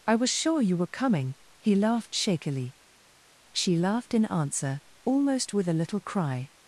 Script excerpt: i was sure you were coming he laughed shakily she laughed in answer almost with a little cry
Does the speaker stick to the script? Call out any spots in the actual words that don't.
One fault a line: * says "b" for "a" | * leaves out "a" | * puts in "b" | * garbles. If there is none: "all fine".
all fine